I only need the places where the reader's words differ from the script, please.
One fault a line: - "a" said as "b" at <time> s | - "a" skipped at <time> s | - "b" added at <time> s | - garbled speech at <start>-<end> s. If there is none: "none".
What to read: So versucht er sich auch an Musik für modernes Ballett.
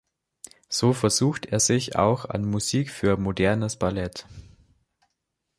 none